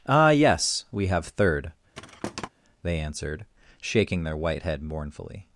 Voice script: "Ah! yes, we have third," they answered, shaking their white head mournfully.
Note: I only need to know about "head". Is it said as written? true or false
true